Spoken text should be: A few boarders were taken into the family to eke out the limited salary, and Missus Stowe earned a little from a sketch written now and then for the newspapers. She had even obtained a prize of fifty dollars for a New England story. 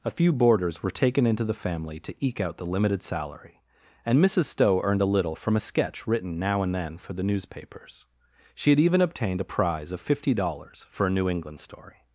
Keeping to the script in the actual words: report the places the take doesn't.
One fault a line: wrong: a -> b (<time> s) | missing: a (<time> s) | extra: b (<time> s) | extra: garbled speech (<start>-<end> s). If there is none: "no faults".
no faults